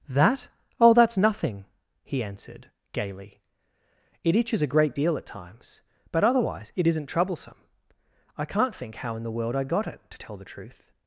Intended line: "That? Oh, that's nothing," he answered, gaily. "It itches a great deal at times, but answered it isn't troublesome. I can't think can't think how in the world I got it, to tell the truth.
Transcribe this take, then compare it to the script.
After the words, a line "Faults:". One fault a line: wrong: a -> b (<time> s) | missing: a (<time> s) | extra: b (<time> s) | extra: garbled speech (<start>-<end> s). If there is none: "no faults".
"That? Oh, that's nothing," he answered, gaily. "It itches a great deal at times, but otherwise it isn't troublesome. I can't think how in the world I got it, to tell the truth.
Faults:
wrong: answered -> otherwise (6.2 s)
missing: can't think (9.0 s)